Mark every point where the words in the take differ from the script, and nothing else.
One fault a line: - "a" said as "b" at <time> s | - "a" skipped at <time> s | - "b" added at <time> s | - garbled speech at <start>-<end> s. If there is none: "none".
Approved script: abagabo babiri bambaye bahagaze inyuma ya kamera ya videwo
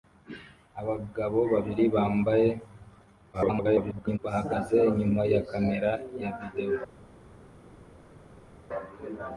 - garbled speech at 3.3-4.2 s